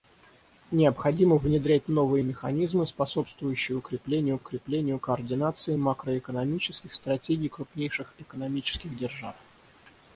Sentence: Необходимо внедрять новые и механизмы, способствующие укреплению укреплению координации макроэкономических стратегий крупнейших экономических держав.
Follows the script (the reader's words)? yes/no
yes